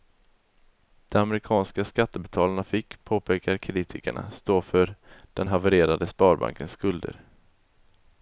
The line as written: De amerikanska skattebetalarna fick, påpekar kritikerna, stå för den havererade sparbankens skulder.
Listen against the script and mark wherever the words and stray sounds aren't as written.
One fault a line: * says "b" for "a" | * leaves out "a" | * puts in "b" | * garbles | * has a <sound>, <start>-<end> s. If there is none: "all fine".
all fine